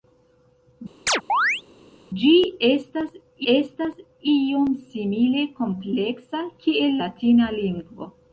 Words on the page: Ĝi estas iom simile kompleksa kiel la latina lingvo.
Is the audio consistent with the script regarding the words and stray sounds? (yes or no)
no